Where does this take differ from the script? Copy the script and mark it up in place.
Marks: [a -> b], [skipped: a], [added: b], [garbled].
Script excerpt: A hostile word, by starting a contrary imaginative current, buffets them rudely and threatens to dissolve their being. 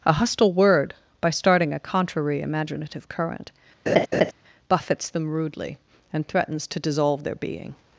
A hostile word, by starting a contrary imaginative current, buffets them rudely and threatens to dissolve their being.